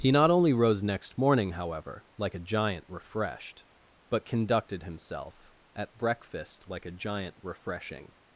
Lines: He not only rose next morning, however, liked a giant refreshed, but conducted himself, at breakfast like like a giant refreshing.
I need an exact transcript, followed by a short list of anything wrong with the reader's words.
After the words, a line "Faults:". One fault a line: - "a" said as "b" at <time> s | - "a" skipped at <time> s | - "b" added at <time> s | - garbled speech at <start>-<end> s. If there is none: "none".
He not only rose next morning, however, like a giant refreshed, but conducted himself, at breakfast like a giant refreshing.
Faults:
- "liked" said as "like" at 2.2 s
- "like" skipped at 6.8 s